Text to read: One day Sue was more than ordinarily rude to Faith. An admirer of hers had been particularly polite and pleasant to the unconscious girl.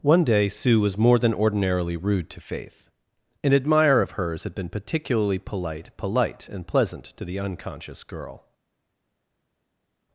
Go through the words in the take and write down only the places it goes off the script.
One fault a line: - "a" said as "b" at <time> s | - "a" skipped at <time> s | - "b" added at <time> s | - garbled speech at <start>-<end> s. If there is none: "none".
- "polite" added at 6.0 s